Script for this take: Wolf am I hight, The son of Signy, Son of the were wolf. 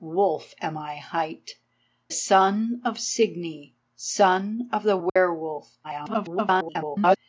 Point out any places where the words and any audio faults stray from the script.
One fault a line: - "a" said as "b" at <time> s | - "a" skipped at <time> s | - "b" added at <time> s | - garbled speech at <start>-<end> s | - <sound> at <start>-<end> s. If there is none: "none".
- "The" skipped at 1.6 s
- dropout at 5.1-5.2 s
- garbled speech at 5.8-7.2 s